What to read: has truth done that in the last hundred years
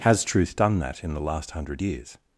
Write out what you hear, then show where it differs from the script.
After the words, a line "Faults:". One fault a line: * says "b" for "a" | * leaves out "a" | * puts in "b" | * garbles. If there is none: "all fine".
has truth done that in the last hundred years
Faults:
all fine